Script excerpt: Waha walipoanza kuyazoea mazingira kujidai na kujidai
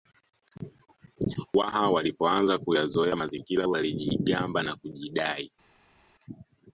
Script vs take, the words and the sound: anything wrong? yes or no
yes